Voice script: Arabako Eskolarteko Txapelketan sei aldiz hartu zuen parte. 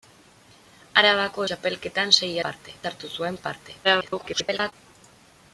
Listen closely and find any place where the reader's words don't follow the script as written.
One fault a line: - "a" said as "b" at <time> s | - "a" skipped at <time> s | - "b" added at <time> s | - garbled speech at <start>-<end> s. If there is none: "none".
- "Eskolarteko" skipped at 1.4 s
- "aldiz" said as "parte" at 2.5 s
- garbled speech at 3.8-4.7 s